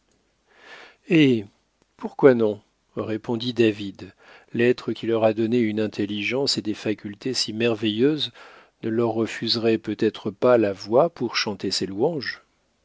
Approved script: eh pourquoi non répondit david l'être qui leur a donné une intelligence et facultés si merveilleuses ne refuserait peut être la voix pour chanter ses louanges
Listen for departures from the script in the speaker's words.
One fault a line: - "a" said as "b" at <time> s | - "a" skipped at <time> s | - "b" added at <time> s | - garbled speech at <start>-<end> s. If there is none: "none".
- "des" added at 6.6 s
- "leur" added at 8.9 s
- "pas" added at 10.3 s